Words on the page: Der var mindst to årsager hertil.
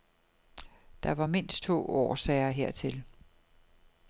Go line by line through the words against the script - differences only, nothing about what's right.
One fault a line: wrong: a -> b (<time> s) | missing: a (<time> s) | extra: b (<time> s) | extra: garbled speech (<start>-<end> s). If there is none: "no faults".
no faults